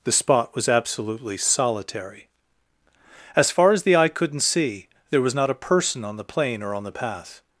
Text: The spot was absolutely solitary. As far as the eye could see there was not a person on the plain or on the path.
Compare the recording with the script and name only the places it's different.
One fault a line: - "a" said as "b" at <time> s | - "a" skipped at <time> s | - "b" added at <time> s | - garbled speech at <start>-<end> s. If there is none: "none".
- "could" said as "couldn't" at 4.1 s